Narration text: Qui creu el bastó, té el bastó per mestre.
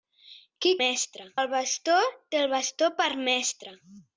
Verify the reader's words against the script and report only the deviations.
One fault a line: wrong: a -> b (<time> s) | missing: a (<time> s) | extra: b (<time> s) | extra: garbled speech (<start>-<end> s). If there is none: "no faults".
wrong: creu -> mestre (0.8 s)